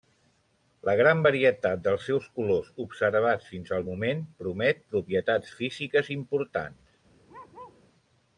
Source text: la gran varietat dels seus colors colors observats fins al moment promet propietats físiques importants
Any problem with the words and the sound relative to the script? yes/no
yes